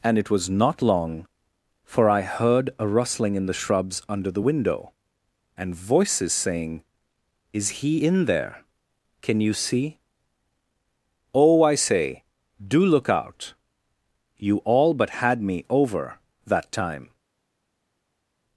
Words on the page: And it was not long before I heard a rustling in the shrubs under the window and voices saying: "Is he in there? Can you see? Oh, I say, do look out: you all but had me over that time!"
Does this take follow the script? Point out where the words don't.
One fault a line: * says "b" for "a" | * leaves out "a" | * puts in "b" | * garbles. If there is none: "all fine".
* says "for" for "before"